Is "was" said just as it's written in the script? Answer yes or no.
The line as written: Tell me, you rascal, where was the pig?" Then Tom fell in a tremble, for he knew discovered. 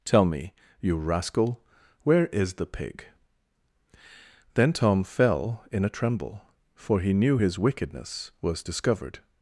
no